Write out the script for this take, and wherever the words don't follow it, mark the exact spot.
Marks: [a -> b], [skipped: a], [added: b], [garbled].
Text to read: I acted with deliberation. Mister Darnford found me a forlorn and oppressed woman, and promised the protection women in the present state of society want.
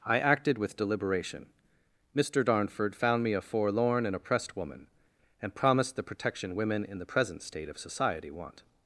I acted with deliberation. Mister Darnford found me a forlorn and oppressed woman, and promised the protection women in the present state of society want.